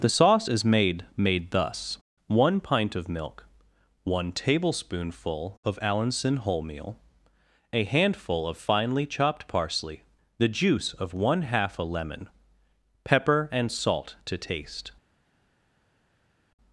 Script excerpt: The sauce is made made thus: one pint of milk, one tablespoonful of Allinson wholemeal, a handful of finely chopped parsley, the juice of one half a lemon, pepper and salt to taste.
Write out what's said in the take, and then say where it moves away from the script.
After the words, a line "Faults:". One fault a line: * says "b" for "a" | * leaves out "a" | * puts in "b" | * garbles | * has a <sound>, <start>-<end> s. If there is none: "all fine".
The sauce is made made thus: one pint of milk, one tablespoonful of Allinson wholemeal, a handful of finely chopped parsley, the juice of one half a lemon, pepper and salt to taste.
Faults:
all fine